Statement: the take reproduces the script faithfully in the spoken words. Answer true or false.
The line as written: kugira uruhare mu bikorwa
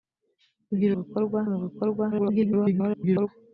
false